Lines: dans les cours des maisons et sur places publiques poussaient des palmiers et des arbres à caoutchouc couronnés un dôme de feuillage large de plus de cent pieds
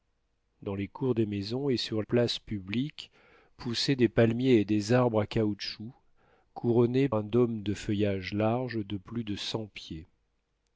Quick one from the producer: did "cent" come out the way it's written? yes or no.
yes